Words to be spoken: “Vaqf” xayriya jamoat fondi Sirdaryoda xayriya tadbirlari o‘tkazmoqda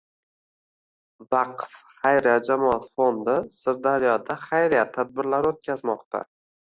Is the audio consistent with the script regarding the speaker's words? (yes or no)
yes